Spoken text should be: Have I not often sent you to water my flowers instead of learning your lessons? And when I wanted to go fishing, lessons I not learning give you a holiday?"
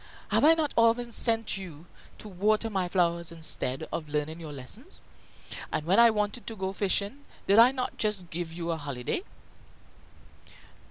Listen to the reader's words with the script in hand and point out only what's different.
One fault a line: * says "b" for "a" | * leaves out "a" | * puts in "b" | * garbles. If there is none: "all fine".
* says "did" for "lessons"
* says "just" for "learning"